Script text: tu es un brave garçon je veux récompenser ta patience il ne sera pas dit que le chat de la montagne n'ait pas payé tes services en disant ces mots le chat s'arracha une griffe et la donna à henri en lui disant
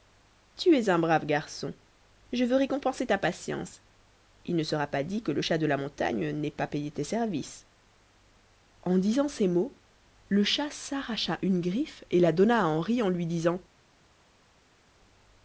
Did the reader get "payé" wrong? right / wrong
right